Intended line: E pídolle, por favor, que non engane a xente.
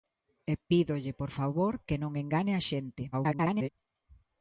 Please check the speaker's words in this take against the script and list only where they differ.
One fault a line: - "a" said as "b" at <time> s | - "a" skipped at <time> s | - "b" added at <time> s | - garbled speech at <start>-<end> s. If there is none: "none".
- garbled speech at 3.1-3.7 s